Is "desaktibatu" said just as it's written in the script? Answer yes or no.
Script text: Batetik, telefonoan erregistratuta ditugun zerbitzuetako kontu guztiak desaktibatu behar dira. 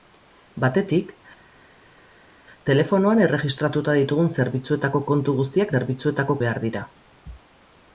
no